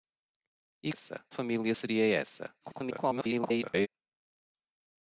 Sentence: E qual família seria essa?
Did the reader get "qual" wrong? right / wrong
wrong